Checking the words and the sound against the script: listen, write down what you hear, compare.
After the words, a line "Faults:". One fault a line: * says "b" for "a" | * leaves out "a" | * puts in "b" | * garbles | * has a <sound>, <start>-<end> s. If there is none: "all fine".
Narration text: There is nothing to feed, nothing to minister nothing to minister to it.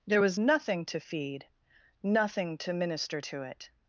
There was nothing to feed, nothing to minister to it.
Faults:
* says "was" for "is"
* leaves out "nothing to minister"